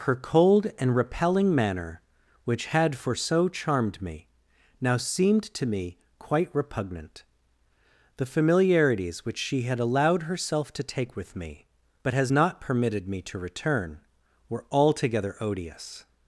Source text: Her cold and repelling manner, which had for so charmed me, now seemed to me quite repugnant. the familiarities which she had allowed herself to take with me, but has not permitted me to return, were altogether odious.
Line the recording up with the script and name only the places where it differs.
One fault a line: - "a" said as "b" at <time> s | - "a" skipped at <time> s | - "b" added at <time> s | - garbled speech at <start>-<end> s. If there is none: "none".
none